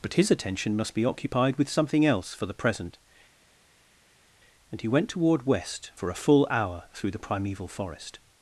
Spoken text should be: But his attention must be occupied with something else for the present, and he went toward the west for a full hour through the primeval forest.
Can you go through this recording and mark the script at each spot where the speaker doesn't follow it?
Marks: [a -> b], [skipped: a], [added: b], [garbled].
But his attention must be occupied with something else for the present, and he went toward [skipped: the] west for a full hour through the primeval forest.